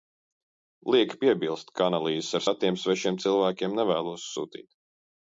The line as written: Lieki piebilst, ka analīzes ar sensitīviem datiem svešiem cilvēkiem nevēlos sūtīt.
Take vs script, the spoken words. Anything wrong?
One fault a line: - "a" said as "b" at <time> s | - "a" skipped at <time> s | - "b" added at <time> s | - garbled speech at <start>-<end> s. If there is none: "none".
- "sensitīviem" skipped at 2.5 s